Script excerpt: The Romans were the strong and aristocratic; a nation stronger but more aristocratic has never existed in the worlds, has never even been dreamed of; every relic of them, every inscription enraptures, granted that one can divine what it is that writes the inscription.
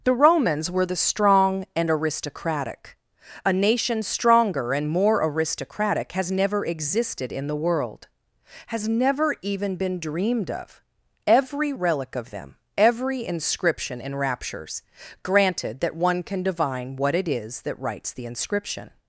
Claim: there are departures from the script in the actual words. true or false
true